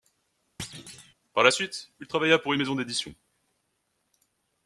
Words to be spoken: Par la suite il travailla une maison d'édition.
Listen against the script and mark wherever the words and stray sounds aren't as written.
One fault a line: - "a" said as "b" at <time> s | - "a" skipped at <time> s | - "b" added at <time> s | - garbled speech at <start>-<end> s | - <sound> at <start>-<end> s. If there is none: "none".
- thud at 0.6-1.1 s
- "pour" added at 2.4 s